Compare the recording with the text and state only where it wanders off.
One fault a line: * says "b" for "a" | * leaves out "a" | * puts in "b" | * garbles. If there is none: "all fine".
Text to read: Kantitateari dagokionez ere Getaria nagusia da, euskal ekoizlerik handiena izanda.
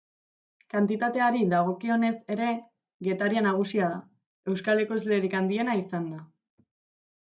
all fine